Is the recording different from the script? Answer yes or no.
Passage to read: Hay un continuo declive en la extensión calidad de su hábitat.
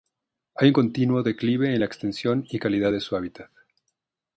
yes